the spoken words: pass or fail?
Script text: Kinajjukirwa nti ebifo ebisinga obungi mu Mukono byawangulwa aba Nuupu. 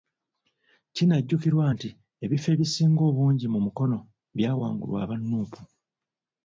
pass